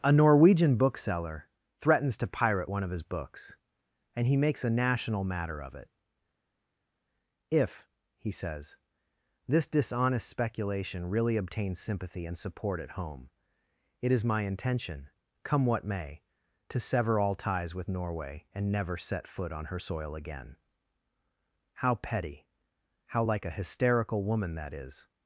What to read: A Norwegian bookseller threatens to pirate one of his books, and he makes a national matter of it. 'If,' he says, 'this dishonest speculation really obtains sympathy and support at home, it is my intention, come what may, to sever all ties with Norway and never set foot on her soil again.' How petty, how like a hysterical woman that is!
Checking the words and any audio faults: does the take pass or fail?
pass